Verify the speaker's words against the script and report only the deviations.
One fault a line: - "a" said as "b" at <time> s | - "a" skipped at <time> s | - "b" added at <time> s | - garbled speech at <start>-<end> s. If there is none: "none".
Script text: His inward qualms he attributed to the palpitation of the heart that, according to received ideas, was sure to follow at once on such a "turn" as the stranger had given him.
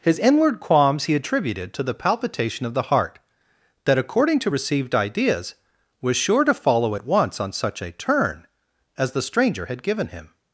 none